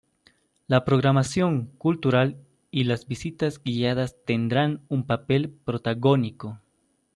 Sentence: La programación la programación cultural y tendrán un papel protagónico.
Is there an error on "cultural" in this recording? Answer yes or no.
yes